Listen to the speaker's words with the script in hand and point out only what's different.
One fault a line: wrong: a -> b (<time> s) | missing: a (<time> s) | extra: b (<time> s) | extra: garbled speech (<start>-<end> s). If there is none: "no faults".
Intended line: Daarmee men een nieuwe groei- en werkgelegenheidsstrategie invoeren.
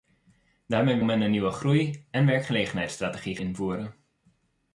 no faults